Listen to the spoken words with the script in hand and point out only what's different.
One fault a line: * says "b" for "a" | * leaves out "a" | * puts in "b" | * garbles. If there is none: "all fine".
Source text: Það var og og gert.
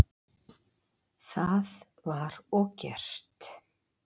* leaves out "og"